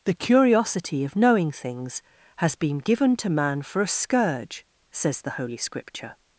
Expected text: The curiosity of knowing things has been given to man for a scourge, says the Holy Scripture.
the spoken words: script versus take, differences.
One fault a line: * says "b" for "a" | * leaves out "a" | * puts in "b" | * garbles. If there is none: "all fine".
all fine